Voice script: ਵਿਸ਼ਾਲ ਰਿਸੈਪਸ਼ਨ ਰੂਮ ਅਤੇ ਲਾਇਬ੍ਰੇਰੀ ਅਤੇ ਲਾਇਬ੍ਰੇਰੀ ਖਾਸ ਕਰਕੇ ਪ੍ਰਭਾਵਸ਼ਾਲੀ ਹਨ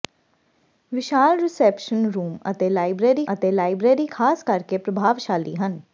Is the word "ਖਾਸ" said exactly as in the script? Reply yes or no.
yes